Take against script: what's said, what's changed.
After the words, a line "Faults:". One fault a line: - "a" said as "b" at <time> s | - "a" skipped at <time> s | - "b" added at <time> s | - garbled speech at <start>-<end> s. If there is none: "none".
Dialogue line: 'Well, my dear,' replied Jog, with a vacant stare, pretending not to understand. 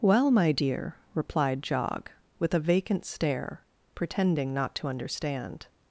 'Well, my dear,' replied Jog, with a vacant stare, pretending not to understand.
Faults:
none